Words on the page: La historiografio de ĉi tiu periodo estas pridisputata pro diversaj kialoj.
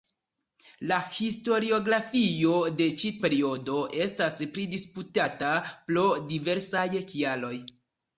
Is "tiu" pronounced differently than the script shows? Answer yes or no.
yes